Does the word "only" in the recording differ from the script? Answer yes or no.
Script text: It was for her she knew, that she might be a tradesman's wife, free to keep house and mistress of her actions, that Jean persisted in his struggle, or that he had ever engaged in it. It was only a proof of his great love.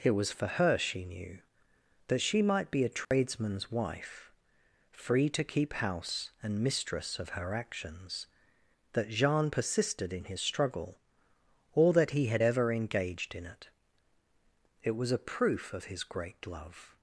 yes